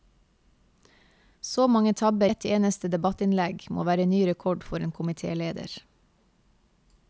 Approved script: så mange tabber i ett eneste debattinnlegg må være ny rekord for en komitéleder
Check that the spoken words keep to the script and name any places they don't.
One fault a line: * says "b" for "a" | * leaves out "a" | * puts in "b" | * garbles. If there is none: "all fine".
* leaves out "i"